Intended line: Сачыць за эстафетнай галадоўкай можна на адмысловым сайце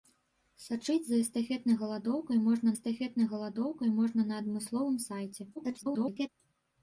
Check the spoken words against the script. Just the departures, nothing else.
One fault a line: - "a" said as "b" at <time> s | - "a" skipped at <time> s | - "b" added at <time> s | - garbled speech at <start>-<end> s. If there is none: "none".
- "эстафетнай галадоўкай можна" added at 2.7 s
- garbled speech at 5.6-6.3 s